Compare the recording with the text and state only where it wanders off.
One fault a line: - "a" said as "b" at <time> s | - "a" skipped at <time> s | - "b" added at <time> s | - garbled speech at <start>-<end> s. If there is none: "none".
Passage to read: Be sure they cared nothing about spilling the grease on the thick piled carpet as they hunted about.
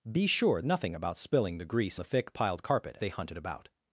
- "they cared" skipped at 0.6 s
- "on" skipped at 2.0 s
- "as" skipped at 3.0 s